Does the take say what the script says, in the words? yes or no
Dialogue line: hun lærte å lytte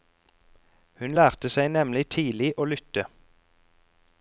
no